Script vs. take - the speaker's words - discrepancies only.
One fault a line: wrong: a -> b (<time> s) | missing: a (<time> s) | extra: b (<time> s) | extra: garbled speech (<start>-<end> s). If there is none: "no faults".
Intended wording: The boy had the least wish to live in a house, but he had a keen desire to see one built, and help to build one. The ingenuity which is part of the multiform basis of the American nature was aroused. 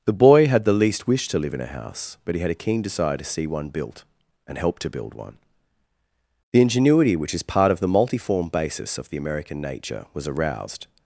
no faults